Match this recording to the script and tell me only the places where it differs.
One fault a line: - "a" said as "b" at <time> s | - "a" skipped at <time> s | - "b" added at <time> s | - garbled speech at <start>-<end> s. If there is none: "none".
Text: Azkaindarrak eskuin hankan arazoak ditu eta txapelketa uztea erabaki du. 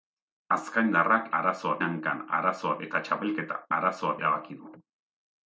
- "eskuin" said as "arazoak" at 1.4 s
- "ditu" skipped at 2.8 s
- "uztea" said as "arazoak" at 3.8 s